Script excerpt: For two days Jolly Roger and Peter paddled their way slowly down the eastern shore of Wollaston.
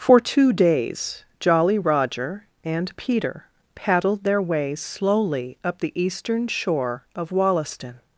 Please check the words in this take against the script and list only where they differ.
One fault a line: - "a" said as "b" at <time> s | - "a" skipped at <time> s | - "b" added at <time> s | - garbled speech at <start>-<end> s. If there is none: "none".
- "down" said as "up" at 5.6 s